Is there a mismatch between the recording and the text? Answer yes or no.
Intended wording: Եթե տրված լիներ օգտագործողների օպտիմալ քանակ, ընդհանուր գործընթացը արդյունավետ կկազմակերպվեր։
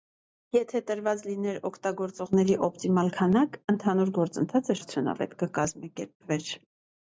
no